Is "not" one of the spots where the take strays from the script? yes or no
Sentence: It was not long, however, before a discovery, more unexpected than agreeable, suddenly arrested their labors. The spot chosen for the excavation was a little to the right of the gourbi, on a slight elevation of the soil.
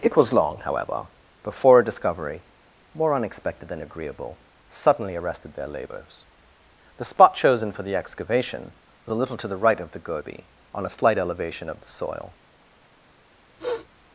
yes